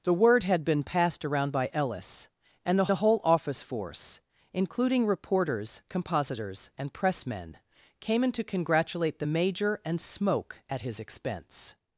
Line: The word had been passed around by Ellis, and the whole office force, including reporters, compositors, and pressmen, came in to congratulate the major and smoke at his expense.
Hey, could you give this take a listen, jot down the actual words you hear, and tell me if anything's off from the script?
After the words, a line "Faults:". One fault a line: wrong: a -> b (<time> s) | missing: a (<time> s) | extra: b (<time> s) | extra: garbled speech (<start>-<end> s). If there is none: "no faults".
The word had been passed around by Ellis, and the the whole office force, including reporters, compositors, and pressmen, came in to congratulate the major and smoke at his expense.
Faults:
extra: the (2.9 s)